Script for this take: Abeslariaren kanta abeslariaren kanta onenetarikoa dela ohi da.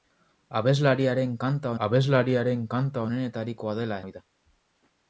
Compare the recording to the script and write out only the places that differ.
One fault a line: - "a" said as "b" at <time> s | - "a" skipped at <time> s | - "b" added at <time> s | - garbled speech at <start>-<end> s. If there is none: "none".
none